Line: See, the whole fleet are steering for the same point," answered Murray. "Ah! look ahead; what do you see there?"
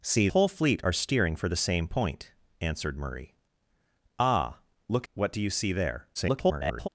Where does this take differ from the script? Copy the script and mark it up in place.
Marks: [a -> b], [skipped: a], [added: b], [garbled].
See, [skipped: the] whole fleet are steering for the same point," answered Murray. "Ah! look [skipped: ahead;] what do you see there?" [garbled]